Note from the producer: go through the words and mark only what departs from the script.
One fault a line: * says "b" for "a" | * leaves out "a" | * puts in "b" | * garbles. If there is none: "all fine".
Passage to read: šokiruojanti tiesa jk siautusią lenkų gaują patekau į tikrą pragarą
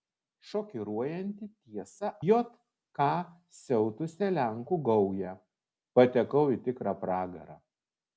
all fine